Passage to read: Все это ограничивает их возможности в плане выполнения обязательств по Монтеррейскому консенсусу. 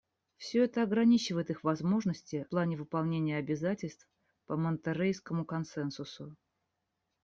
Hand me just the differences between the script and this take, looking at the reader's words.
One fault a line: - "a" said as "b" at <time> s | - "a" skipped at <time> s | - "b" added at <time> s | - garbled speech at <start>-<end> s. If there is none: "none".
- "в" skipped at 2.5 s